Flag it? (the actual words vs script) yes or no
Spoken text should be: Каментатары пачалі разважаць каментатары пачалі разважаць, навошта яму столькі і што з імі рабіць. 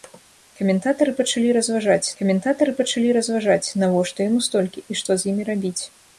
no